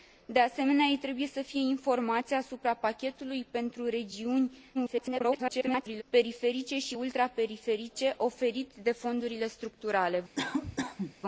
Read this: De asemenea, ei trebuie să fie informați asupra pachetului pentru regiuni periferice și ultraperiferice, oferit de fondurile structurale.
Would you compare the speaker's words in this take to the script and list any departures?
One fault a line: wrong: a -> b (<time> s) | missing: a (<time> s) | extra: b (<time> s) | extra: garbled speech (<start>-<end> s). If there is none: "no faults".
extra: garbled speech (4.7-6.0 s)